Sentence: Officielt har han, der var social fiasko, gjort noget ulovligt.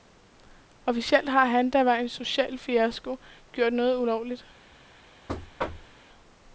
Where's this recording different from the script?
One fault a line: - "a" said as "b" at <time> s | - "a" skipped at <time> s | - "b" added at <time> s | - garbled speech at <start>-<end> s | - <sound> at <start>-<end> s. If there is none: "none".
- "en" added at 1.9 s
- thud at 5.3-6.0 s